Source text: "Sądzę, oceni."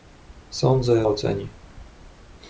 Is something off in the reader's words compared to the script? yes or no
no